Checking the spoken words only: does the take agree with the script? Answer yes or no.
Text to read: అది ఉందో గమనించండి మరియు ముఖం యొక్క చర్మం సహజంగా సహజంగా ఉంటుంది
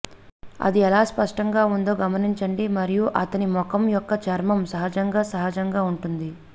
no